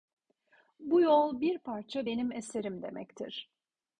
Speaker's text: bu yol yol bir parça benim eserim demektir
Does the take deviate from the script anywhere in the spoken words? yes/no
yes